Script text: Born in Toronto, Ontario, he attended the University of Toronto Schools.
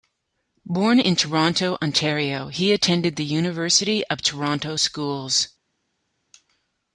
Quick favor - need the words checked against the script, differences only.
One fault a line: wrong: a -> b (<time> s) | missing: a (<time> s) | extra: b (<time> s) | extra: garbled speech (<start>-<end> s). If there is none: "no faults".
no faults